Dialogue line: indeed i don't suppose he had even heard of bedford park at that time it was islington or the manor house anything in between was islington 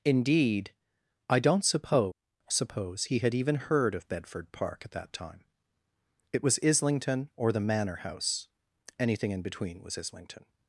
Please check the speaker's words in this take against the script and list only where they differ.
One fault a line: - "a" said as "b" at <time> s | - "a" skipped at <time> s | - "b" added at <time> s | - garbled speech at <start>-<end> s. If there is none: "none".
- "suppose" added at 2.5 s